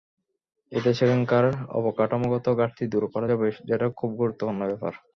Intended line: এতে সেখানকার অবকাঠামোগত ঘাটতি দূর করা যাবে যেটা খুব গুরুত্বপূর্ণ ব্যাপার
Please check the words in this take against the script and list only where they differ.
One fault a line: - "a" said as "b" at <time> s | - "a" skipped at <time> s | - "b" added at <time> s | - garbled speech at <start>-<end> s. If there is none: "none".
none